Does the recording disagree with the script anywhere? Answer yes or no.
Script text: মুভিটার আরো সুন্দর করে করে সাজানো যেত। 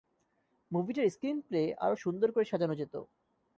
yes